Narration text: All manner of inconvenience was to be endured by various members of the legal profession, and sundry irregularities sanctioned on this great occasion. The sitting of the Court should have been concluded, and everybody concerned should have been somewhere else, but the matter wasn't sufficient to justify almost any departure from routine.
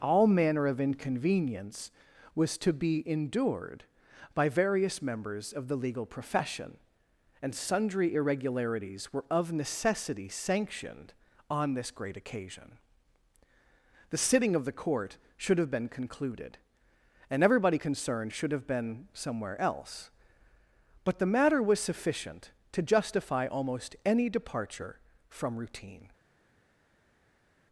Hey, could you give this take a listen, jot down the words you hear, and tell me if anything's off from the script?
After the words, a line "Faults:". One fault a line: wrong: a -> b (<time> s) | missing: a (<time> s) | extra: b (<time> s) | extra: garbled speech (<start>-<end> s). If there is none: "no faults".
All manner of inconvenience was to be endured by various members of the legal profession, and sundry irregularities were of necessity sanctioned on this great occasion. The sitting of the Court should have been concluded, and everybody concerned should have been somewhere else, but the matter was sufficient to justify almost any departure from routine.
Faults:
extra: were of necessity (9.1 s)
wrong: wasn't -> was (21.6 s)